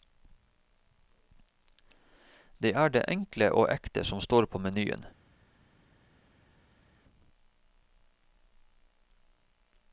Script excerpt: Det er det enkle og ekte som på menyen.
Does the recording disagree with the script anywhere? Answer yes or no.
yes